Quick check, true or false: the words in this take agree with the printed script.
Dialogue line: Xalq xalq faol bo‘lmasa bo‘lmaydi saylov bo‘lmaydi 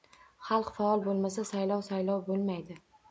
false